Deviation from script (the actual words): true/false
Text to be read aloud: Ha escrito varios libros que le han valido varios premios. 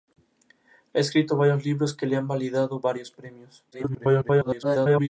true